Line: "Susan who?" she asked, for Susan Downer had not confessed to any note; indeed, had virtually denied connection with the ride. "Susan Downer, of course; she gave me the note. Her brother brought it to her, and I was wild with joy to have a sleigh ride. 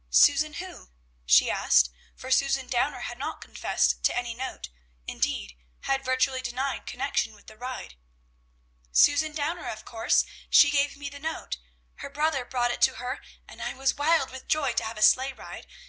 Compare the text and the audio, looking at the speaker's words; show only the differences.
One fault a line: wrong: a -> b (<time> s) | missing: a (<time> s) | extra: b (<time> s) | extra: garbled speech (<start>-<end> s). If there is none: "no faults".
no faults